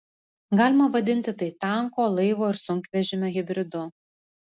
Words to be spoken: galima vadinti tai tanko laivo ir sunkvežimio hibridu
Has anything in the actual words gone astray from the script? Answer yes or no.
no